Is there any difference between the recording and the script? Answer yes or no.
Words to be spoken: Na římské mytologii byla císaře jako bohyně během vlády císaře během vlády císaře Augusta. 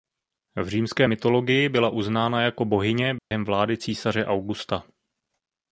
yes